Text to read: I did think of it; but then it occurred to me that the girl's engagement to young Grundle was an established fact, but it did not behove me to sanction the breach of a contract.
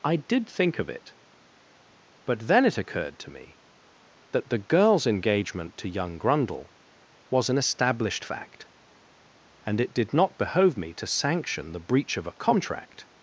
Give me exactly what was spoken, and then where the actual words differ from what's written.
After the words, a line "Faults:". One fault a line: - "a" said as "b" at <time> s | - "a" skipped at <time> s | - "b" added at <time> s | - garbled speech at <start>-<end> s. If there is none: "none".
I did think of it; but then it occurred to me that the girl's engagement to young Grundle was an established fact, and it did not behove me to sanction the breach of a contract.
Faults:
- "but" said as "and" at 9.7 s